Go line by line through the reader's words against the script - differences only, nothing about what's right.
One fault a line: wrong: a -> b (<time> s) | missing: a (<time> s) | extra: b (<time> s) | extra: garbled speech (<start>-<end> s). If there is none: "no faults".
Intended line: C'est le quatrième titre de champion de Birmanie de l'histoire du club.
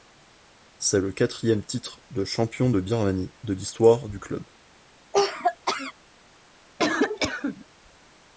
no faults